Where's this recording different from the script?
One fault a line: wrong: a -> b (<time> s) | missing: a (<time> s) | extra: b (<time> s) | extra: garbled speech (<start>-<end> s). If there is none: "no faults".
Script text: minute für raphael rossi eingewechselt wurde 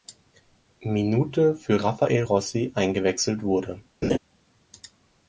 no faults